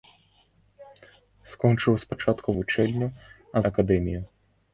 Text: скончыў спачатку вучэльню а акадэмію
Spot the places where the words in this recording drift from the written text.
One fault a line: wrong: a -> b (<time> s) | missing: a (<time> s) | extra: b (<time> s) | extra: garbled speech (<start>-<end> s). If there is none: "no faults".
no faults